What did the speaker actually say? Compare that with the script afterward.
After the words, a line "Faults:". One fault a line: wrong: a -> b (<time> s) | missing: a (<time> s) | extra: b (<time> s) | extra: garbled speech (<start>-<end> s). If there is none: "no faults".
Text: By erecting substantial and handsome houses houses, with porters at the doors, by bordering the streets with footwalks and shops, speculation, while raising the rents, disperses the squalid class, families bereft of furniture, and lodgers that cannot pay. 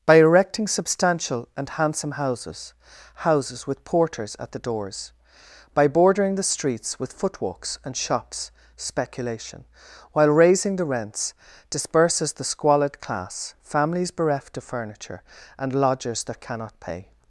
By erecting substantial and handsome houses houses, with porters at the doors, by bordering the streets with footwalks and shops, speculation, while raising the rents, disperses the squalid class, families bereft of furniture, and lodgers that cannot pay.
Faults:
no faults